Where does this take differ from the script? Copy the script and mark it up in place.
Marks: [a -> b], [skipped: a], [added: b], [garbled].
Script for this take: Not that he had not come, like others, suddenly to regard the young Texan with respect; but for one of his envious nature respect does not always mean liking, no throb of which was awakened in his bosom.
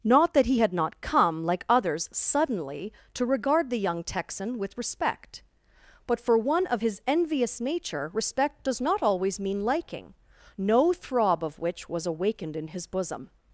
Not that he had not come, like others, suddenly to regard the young Texan with respect; but for one of his envious nature respect does not always mean liking, no throb of which was awakened in his bosom.